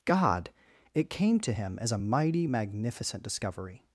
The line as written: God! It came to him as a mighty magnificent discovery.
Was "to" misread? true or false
false